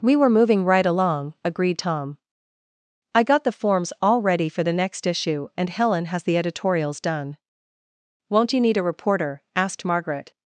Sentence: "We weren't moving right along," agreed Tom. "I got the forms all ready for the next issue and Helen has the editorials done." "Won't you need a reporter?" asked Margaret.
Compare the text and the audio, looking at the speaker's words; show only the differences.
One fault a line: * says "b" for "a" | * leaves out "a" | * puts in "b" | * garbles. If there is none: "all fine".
* says "were" for "weren't"